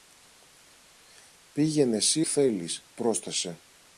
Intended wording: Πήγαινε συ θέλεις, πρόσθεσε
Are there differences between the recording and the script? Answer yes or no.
no